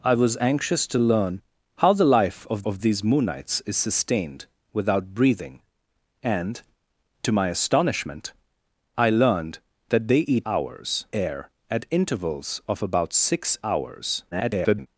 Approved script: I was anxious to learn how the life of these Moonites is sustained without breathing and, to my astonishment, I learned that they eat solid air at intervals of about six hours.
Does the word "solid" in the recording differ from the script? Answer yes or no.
yes